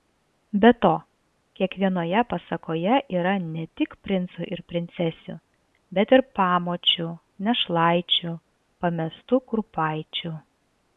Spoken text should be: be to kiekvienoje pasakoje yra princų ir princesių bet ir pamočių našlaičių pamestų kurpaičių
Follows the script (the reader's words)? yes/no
no